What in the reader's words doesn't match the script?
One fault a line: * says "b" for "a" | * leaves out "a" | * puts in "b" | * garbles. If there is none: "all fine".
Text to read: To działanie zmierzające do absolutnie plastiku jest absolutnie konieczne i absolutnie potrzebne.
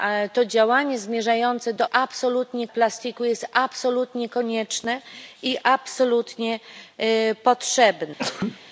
all fine